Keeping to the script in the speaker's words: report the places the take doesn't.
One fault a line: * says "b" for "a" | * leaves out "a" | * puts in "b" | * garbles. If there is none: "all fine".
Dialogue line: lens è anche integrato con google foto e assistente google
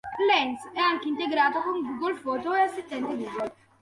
all fine